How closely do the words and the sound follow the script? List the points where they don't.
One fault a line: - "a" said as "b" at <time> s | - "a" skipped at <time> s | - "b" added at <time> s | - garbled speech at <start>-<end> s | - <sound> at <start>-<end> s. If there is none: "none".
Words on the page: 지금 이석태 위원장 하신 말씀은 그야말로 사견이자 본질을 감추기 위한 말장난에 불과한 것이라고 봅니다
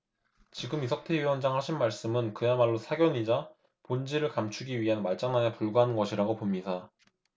none